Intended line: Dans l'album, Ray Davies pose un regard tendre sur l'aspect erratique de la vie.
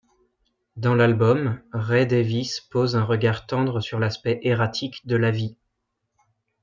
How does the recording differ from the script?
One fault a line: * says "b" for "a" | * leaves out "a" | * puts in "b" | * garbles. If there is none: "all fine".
all fine